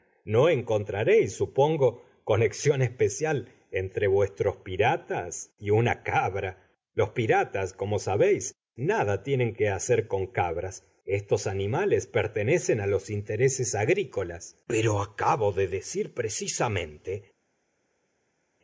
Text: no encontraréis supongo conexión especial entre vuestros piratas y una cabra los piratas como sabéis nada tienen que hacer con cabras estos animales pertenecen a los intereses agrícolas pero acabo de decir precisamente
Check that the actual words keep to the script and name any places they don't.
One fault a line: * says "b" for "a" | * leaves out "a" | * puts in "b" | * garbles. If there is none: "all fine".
all fine